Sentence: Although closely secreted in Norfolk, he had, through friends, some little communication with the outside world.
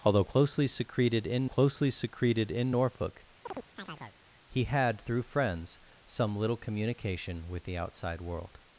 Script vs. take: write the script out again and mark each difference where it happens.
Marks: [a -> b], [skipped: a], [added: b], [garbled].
Although closely secreted in [added: closely secreted in] Norfolk, he had, through friends, some little communication with the outside world.